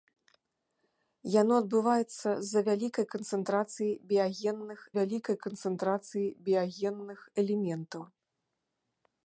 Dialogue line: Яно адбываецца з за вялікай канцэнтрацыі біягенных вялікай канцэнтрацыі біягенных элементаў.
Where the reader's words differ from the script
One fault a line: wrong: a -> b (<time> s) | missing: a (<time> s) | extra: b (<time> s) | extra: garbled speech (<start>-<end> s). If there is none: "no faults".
no faults